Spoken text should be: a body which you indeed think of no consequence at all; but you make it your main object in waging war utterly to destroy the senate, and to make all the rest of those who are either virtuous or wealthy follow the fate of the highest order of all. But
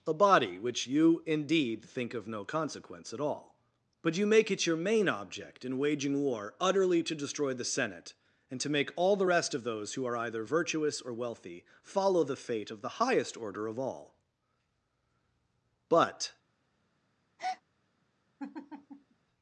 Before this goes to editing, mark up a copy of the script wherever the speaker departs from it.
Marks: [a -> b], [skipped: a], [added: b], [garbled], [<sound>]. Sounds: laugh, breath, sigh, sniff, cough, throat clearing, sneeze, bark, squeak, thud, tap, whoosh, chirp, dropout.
a body which you indeed think of no consequence at all; but you make it your main object in waging war utterly to destroy the senate, and to make all the rest of those who are either virtuous or wealthy follow the fate of the highest order of all. But [breath] [laugh]